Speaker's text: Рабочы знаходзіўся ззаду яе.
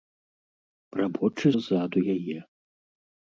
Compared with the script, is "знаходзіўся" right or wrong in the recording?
wrong